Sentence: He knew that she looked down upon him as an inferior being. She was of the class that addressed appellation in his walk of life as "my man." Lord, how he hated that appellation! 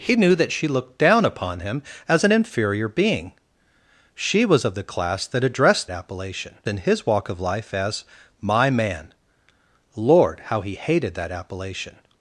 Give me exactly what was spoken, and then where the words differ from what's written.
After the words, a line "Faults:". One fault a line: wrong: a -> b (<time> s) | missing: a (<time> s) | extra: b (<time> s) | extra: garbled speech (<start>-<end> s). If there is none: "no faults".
He knew that she looked down upon him as an inferior being. She was of the class that addressed appellation in his walk of life as "my man." Lord, how he hated that appellation!
Faults:
no faults